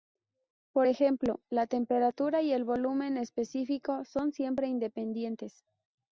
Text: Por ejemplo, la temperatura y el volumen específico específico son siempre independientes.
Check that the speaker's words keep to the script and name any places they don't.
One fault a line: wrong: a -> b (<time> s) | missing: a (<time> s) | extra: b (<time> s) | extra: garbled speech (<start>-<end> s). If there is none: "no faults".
missing: específico (4.0 s)